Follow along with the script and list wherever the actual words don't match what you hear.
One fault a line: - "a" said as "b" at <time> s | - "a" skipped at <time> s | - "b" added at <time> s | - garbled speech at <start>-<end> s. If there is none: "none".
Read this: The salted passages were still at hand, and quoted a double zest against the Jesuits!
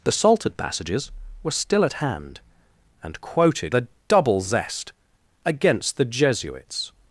none